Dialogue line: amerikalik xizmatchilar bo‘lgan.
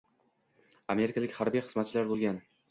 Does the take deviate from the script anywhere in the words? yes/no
yes